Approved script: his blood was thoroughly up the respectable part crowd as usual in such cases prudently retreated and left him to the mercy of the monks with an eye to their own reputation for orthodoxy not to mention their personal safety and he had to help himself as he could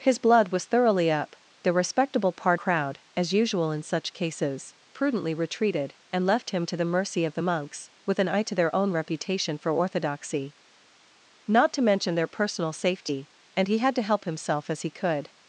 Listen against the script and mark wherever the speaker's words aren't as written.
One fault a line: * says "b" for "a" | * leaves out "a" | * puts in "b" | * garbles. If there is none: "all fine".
all fine